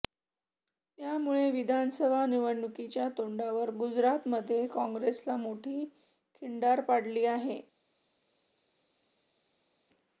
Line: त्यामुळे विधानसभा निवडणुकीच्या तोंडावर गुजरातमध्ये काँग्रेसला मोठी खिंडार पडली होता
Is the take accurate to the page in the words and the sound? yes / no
no